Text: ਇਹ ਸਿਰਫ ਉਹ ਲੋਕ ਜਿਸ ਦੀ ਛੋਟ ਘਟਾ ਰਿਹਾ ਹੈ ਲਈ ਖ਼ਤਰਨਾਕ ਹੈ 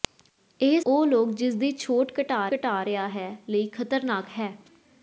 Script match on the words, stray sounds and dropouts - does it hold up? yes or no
no